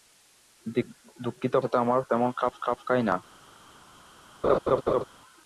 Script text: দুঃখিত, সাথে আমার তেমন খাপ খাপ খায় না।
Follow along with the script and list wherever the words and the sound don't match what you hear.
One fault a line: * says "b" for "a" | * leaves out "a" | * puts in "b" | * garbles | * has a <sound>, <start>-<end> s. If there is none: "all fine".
* has a laugh, 4.4-5.0 s